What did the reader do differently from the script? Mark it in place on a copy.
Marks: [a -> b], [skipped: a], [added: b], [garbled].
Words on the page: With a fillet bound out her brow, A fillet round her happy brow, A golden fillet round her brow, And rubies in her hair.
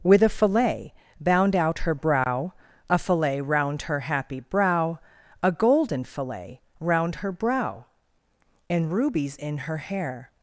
With a fillet bound out her brow, A fillet round her happy brow, A golden fillet round her brow, And rubies in her hair.